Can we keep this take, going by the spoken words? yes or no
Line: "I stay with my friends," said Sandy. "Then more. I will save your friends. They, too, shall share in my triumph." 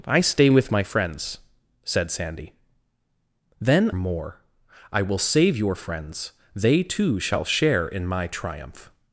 yes